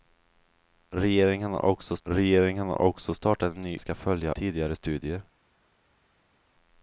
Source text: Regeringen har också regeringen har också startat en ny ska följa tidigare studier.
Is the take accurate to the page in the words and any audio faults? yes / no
yes